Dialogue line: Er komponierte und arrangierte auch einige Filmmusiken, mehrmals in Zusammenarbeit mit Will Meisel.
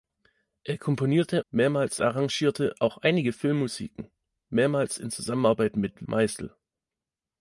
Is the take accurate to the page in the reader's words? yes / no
no